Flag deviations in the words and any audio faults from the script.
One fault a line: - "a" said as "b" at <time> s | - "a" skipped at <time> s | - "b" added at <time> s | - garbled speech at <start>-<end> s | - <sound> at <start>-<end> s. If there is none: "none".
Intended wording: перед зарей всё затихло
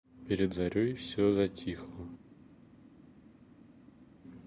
none